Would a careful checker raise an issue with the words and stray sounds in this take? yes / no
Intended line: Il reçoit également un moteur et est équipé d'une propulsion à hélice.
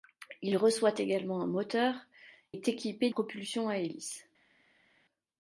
yes